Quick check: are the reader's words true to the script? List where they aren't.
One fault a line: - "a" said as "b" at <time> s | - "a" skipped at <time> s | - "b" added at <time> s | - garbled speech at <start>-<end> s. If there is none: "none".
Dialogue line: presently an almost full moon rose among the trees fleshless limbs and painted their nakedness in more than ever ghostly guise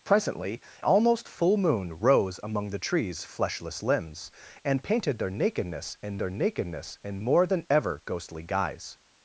- "an" skipped at 0.6 s
- "their nakedness in" added at 6.2 s